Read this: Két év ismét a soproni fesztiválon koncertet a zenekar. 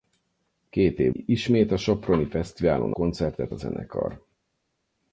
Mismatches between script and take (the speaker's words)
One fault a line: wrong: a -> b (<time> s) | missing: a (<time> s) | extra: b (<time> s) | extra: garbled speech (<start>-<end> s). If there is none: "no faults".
no faults